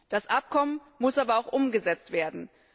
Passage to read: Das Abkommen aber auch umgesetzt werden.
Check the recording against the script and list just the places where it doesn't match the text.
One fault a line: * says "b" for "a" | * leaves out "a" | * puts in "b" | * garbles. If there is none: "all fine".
* puts in "muss"